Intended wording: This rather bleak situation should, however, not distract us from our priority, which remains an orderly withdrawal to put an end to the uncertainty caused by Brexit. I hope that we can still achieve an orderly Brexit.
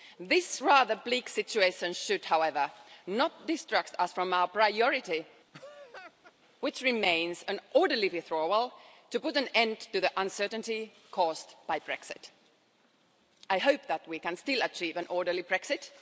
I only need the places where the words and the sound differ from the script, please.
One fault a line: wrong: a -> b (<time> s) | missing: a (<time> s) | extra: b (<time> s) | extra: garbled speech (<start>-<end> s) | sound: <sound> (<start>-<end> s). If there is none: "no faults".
sound: laugh (5.5-6.3 s)